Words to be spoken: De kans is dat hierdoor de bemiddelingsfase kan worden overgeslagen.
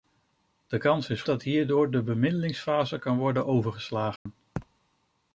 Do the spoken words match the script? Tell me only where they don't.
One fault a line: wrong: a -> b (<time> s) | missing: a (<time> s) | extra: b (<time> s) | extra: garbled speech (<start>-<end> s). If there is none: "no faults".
no faults